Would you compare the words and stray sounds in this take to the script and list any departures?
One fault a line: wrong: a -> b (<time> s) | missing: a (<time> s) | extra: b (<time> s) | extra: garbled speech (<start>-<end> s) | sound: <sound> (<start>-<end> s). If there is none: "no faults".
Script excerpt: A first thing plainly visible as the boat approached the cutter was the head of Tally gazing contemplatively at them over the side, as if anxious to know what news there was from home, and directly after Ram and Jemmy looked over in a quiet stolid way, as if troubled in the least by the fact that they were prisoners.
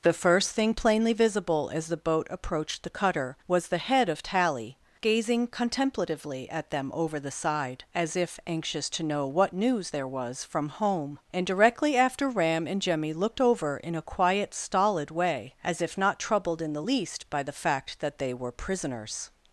wrong: A -> The (0.0 s)
extra: not (16.0 s)